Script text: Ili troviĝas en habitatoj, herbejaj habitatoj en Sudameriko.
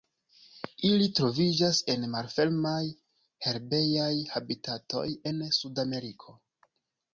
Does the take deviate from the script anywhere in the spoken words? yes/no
yes